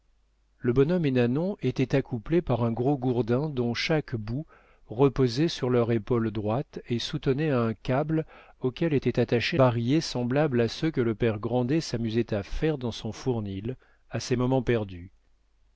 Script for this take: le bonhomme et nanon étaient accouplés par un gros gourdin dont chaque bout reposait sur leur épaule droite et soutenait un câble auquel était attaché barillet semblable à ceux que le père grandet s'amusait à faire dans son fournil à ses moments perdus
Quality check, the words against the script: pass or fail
pass